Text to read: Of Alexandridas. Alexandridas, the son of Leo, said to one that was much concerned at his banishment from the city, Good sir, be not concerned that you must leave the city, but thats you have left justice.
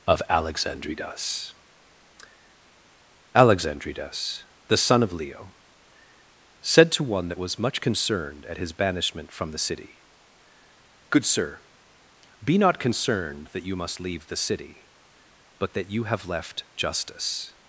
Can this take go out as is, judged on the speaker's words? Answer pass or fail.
fail